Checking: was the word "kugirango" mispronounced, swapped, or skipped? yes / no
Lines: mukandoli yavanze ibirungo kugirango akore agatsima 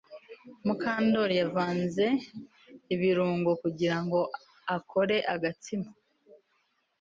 no